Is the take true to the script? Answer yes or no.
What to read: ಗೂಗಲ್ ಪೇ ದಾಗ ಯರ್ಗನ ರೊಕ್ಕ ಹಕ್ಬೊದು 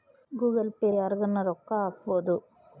no